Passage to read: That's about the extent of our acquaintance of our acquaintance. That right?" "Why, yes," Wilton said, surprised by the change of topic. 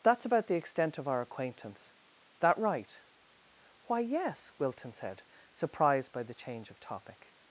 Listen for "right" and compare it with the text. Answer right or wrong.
right